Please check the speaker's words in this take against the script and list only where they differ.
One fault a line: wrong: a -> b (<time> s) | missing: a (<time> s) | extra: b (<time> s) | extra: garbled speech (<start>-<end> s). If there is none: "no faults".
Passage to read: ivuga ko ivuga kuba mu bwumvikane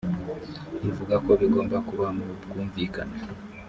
wrong: ivuga -> bigomba (1.4 s)